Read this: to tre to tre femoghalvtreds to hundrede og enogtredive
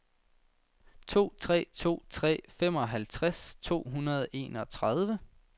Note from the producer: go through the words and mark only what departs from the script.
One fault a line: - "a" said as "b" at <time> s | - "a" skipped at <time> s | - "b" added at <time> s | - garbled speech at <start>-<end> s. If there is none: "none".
none